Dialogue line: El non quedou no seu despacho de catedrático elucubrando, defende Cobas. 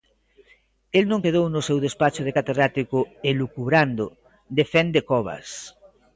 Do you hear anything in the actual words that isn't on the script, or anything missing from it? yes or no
no